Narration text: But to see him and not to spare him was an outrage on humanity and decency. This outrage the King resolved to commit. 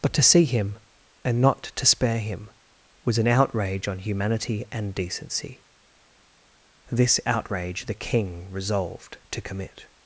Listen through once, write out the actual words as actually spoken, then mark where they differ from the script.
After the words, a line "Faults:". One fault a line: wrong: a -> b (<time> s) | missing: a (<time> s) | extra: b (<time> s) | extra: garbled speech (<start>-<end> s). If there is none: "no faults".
But to see him and not to spare him was an outrage on humanity and decency. This outrage the King resolved to commit.
Faults:
no faults